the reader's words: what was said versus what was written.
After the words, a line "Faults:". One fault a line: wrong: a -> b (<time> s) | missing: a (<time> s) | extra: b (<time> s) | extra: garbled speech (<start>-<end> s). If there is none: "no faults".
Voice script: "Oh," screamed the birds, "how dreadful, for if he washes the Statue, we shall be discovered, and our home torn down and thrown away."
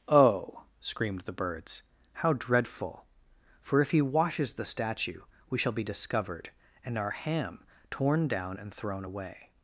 "Oh," screamed the birds, "how dreadful, for if he washes the Statue, we shall be discovered, and our ham torn down and thrown away."
Faults:
wrong: home -> ham (7.1 s)